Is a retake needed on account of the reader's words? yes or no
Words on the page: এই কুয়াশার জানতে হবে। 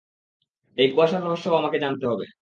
yes